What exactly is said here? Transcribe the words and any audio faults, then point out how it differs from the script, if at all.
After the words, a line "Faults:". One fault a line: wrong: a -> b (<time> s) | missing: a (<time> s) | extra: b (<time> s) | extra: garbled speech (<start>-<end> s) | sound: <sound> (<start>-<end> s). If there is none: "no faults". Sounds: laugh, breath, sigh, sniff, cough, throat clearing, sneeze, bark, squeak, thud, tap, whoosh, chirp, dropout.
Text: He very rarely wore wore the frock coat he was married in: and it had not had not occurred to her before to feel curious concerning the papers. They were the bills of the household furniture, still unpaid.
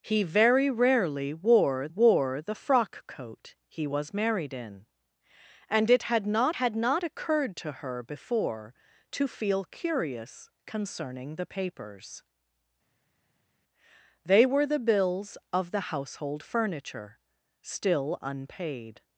He very rarely wore wore the frock coat he was married in: and it had not had not occurred to her before to feel curious concerning the papers. They were the bills of the household furniture, still unpaid.
Faults:
no faults